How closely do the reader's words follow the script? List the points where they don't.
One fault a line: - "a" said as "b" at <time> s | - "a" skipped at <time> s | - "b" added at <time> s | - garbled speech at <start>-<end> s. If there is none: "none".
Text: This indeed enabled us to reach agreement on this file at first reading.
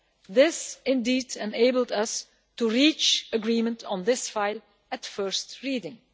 none